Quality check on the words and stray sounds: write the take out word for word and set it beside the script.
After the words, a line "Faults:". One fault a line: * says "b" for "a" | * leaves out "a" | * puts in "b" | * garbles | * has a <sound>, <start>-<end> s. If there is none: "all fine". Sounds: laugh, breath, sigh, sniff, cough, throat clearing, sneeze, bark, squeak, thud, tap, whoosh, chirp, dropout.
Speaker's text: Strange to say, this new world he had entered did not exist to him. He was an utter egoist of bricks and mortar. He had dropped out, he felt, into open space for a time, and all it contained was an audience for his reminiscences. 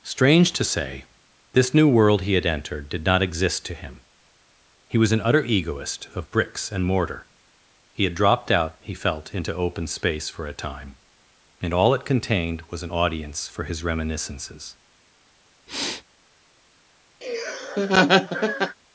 Strange to say, this new world he had entered did not exist to him. He was an utter egoist of bricks and mortar. He had dropped out, he felt, into open space for a time, and all it contained was an audience for his reminiscences.
Faults:
* has a sniff, 15.7-16.0 s
* has a laugh, 17.2-18.8 s